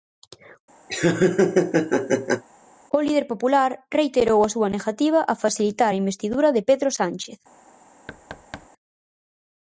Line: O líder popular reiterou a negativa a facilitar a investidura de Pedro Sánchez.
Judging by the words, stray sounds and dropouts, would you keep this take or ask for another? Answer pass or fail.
fail